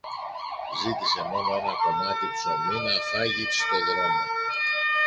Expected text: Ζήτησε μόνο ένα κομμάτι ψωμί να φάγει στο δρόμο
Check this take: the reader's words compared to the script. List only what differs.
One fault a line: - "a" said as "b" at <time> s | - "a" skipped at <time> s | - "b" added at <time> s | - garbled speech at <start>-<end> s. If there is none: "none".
none